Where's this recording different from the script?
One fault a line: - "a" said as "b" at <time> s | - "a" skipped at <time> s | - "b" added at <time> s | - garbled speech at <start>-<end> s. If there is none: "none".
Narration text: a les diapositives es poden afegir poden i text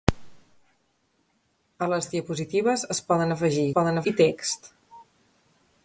none